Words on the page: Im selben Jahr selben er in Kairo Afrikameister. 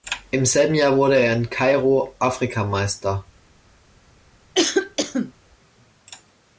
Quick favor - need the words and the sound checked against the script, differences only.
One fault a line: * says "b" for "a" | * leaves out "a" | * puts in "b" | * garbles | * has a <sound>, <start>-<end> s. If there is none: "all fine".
* says "wurde" for "selben"
* has a cough, 4.5-5.3 s